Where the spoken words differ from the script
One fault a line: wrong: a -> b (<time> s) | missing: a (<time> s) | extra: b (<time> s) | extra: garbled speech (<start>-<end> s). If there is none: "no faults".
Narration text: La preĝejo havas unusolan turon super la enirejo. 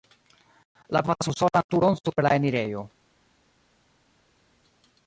missing: preĝejo (1.0 s)